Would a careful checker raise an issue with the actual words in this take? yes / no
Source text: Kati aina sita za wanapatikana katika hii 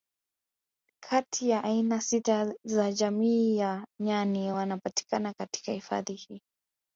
yes